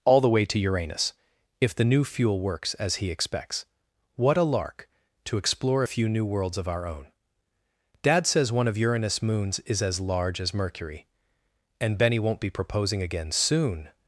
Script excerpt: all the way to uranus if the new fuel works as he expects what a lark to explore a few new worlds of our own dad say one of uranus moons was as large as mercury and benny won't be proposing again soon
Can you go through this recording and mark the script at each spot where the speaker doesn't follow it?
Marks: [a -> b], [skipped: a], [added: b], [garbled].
all the way to uranus if the new fuel works as he expects what a lark to explore a few new worlds of our own dad [say -> says] one of uranus moons [was -> is] as large as mercury and benny won't be proposing again soon